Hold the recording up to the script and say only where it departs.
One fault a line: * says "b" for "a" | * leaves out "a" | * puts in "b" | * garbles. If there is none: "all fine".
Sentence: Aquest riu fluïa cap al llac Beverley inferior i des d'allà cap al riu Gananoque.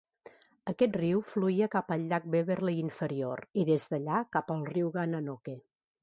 all fine